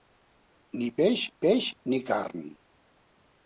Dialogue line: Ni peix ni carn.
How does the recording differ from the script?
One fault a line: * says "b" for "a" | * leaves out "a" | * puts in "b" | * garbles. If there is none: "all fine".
* puts in "peix"